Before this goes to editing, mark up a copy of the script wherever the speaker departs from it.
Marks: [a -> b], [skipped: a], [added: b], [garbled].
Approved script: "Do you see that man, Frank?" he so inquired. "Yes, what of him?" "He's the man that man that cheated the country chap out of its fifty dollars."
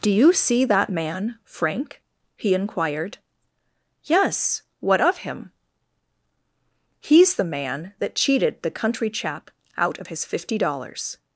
"Do you see that man, Frank?" he [skipped: so] inquired. "Yes, what of him?" "He's the man that [skipped: man that] cheated the country chap out of [its -> his] fifty dollars."